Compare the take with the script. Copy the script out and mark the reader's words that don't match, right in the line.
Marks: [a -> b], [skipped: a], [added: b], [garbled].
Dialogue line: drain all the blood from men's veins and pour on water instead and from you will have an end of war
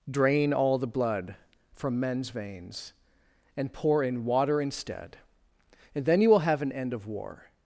drain all the blood from men's veins and pour [on -> in] water instead and [from -> then] you will have an end of war